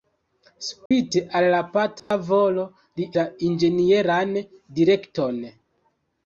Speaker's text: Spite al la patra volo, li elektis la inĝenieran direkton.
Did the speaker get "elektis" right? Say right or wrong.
wrong